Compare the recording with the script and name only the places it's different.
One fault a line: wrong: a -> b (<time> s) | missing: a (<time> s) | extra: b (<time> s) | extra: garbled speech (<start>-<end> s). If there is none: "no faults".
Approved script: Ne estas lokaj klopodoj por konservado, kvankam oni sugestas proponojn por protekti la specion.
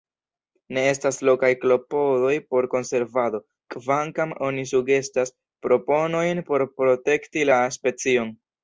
no faults